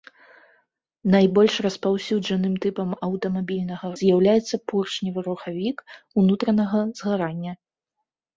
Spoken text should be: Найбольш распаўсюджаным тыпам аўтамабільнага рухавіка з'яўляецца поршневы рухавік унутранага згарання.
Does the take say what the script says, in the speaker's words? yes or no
no